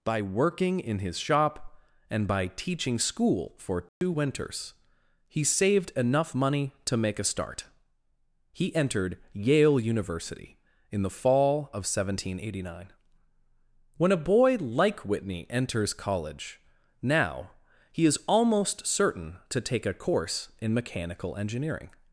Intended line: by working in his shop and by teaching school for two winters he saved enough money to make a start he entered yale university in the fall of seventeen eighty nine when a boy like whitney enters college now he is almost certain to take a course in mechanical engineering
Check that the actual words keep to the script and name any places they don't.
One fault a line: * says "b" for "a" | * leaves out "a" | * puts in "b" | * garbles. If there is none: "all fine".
all fine